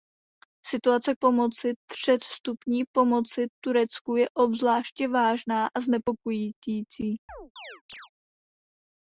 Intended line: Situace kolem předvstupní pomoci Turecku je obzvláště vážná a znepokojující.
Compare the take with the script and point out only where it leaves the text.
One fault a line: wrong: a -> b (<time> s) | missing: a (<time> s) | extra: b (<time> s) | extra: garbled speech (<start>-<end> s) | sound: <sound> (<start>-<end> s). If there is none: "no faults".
wrong: kolem -> pomoci (1.2 s)
sound: chirp (7.3-8.1 s)